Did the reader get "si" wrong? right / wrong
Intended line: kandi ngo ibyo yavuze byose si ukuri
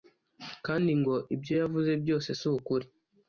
right